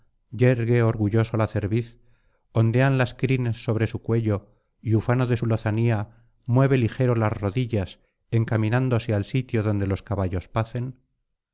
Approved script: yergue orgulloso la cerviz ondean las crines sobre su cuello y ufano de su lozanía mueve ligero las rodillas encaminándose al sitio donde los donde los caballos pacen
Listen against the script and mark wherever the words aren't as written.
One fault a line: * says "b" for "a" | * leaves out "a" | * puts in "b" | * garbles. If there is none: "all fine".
* leaves out "donde los"